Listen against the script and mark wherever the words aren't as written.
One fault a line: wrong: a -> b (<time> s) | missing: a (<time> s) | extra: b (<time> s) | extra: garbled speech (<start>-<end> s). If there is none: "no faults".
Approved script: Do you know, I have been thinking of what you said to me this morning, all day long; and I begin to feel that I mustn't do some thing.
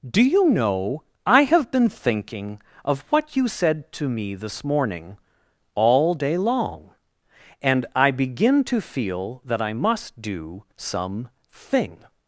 wrong: mustn't -> must (9.7 s)